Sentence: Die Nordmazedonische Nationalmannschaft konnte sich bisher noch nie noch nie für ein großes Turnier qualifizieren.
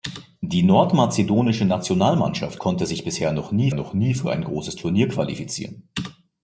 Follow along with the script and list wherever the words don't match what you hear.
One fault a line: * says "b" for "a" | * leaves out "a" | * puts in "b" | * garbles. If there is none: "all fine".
all fine